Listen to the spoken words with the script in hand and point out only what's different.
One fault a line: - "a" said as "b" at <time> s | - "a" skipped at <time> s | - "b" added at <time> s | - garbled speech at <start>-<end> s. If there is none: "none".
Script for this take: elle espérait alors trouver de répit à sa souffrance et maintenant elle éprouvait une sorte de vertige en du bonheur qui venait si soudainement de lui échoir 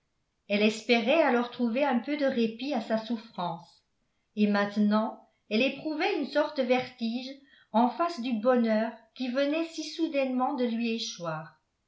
- "un peu" added at 1.8 s
- "face" added at 7.9 s